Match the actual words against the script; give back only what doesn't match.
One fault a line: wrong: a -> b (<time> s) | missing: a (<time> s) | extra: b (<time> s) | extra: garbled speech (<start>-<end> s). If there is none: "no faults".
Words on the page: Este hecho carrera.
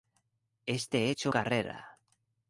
no faults